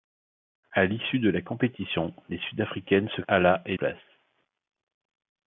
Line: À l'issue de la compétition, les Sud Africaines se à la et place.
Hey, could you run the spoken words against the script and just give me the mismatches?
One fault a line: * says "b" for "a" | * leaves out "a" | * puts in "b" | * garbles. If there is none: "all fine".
all fine